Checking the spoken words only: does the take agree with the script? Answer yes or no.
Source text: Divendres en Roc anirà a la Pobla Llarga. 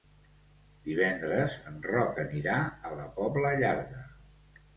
yes